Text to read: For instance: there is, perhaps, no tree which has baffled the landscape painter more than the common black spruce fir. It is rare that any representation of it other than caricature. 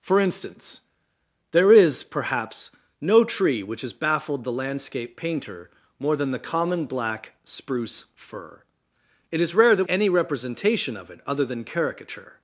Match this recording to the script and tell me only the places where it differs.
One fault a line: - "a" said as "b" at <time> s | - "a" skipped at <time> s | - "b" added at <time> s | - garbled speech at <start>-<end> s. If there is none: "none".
none